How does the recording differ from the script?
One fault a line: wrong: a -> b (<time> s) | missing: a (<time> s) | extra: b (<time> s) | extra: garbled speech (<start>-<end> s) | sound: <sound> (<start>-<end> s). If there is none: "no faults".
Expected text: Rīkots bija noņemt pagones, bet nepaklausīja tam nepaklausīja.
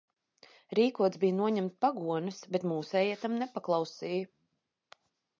wrong: nepaklausīja -> mūsējie (2.7 s)